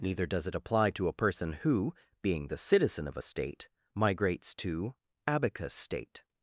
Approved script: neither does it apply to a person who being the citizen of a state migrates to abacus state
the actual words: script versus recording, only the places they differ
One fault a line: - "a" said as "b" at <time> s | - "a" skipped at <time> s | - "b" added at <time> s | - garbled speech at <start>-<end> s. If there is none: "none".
none